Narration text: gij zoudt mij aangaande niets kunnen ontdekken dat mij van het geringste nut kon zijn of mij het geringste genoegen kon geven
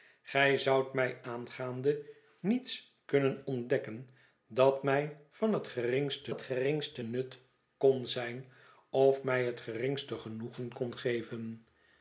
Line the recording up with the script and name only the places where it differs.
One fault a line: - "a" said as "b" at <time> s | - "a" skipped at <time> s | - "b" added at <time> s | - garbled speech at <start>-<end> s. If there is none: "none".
- "het geringste" added at 6.3 s